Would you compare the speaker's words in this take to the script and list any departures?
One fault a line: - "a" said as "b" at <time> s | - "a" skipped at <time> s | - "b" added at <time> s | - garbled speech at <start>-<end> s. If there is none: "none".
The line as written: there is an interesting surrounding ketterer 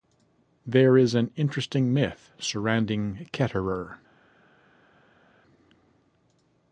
- "myth" added at 1.9 s